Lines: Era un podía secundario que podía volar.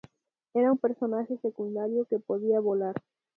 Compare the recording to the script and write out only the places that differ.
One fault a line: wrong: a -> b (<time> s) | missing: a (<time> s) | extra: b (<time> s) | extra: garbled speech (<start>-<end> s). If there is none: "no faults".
wrong: podía -> personaje (0.8 s)